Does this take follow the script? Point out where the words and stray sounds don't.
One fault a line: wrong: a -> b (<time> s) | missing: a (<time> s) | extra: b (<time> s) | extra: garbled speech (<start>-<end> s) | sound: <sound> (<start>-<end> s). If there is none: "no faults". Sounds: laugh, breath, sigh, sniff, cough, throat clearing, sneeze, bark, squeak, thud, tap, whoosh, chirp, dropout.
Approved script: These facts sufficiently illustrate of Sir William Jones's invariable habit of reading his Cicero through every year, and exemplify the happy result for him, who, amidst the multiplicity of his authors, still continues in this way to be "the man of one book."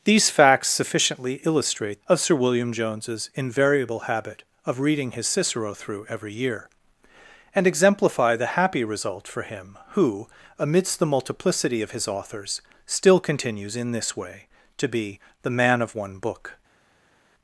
no faults